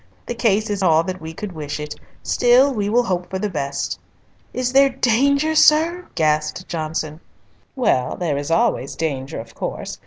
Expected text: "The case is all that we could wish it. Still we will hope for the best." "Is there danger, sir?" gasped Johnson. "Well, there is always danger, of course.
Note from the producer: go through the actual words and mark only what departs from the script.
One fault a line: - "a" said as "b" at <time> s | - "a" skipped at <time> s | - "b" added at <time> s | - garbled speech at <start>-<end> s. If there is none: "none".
none